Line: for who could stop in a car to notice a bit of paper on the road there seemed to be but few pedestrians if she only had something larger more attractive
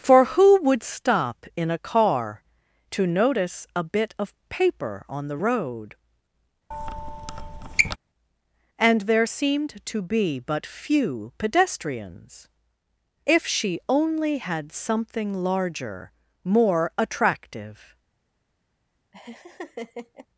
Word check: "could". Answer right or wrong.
wrong